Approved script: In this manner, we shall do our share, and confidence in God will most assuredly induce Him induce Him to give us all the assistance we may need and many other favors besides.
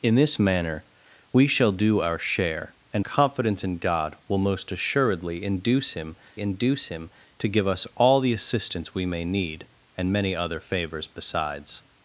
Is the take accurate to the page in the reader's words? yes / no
yes